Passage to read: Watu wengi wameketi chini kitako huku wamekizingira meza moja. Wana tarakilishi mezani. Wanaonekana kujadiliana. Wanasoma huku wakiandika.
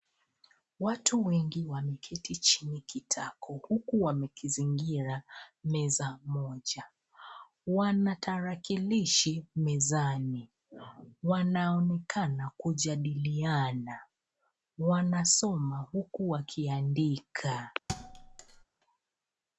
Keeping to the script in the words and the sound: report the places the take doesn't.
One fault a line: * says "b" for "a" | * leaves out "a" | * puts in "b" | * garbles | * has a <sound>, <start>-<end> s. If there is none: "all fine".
* has a thud, 17.9-18.6 s